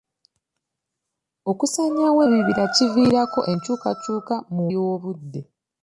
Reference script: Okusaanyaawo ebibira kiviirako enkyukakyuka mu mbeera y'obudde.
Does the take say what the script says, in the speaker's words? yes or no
no